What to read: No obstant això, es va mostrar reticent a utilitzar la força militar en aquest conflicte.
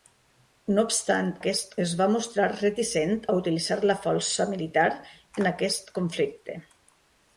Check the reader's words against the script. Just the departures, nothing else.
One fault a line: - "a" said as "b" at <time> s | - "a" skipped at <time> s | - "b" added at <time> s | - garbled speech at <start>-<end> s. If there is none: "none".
- "això" said as "aquest" at 1.4 s